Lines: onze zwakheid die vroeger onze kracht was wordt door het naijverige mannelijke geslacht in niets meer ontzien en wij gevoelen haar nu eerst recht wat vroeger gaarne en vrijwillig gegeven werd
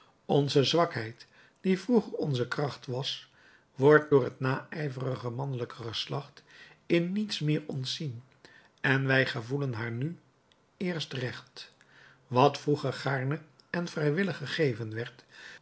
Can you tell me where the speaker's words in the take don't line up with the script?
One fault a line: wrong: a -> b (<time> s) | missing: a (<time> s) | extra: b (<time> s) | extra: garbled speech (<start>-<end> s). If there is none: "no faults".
no faults